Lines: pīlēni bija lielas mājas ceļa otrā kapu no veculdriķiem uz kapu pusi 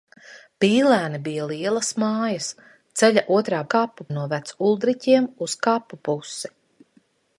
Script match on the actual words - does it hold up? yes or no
yes